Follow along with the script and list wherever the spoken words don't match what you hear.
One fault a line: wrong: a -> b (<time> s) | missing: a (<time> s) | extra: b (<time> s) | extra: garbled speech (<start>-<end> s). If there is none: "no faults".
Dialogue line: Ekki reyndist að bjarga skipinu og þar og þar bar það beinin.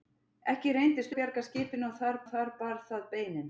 no faults